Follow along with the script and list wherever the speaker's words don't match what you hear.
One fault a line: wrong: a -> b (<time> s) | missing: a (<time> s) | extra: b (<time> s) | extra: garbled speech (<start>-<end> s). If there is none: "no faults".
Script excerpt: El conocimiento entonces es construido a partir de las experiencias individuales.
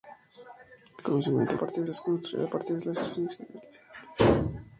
wrong: entonces -> partir (1.6 s)